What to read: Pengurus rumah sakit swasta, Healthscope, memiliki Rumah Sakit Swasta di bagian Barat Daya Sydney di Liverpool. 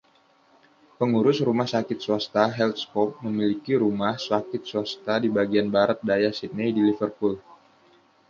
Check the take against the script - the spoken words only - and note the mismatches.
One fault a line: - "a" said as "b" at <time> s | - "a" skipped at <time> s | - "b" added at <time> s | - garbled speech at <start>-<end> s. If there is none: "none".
none